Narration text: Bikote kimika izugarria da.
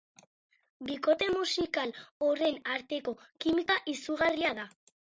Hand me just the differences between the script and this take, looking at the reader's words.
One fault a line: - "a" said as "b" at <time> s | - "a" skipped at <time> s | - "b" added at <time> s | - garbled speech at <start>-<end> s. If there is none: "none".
- "musikal horren arteko" added at 1.4 s